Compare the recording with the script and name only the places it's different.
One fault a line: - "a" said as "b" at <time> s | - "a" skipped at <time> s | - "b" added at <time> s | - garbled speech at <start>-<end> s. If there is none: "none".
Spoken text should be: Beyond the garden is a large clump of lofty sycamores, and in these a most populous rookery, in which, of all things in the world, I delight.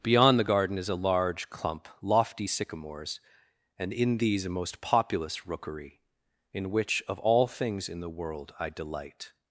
- "of" skipped at 1.9 s